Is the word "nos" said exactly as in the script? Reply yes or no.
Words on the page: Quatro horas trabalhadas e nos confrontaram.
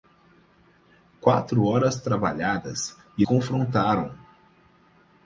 no